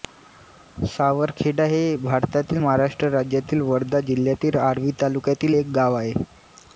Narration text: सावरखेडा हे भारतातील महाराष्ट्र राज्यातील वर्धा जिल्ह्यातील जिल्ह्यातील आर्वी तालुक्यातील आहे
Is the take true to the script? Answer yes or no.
no